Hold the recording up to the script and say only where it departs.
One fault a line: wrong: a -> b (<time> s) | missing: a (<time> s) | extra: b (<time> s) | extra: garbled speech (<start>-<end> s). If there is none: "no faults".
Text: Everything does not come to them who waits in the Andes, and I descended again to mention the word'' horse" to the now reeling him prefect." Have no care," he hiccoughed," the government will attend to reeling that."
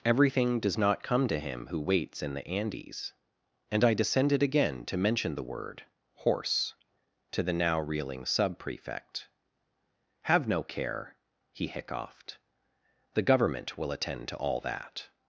wrong: them -> him (1.4 s)
wrong: him -> sub (8.2 s)
wrong: reeling -> all (14.4 s)